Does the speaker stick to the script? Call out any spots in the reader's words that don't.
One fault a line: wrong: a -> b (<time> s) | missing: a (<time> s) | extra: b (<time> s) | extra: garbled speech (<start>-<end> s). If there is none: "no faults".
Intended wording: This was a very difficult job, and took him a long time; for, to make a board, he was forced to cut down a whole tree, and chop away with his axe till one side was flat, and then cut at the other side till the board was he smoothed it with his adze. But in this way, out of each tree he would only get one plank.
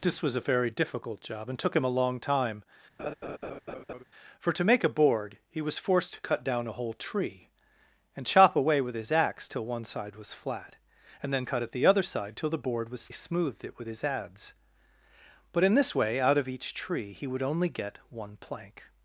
no faults